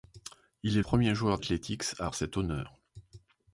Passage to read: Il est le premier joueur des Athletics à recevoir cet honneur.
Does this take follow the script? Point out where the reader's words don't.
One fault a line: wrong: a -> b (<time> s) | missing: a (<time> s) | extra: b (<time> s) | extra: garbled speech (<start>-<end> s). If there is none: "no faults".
missing: le (0.8 s)
missing: des (1.4 s)
missing: recevoir (2.1 s)